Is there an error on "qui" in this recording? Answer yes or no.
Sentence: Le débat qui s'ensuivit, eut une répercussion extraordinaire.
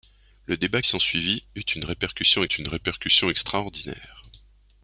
yes